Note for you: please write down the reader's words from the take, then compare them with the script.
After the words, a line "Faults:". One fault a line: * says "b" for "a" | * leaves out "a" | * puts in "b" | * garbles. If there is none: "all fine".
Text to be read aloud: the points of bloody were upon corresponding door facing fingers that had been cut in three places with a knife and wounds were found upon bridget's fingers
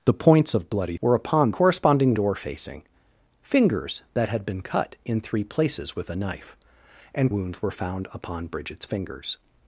the points of bloody were upon corresponding door facing fingers that had been cut in three places with a knife and wounds were found upon bridget's fingers
Faults:
all fine